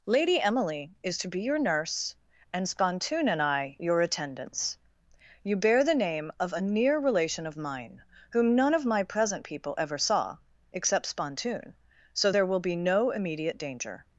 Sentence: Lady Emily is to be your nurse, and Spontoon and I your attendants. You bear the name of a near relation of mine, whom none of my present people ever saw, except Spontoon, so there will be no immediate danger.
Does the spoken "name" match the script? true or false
true